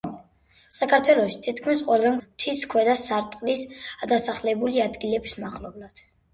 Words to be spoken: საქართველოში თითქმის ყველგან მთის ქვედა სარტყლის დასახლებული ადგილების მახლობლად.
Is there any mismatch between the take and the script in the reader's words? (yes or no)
no